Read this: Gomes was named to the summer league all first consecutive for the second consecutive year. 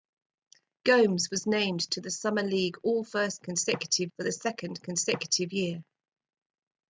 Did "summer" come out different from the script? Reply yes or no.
no